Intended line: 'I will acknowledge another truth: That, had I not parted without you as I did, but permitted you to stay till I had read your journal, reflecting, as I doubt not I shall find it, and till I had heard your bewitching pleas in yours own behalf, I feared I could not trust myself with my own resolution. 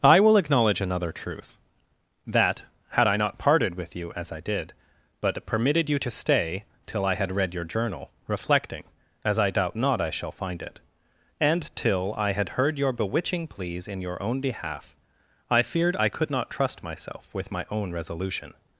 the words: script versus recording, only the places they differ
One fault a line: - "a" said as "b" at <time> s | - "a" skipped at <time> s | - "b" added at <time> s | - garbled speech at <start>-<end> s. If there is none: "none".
- "without" said as "with" at 3.8 s
- "yours" said as "your" at 14.0 s